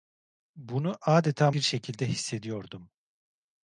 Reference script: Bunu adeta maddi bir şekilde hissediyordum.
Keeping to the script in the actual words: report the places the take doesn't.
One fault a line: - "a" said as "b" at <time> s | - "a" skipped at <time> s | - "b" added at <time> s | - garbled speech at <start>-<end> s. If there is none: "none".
- "maddi" skipped at 1.5 s